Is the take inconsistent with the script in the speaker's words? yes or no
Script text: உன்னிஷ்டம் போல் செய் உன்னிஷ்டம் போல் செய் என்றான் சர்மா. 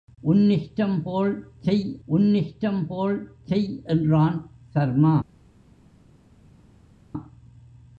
no